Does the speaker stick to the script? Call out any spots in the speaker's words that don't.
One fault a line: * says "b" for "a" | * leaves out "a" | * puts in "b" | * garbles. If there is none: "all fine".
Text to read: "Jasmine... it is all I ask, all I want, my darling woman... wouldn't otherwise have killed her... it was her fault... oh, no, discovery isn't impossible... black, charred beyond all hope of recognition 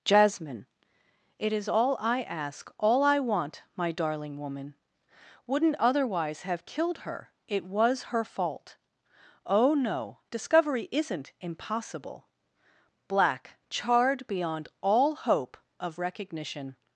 all fine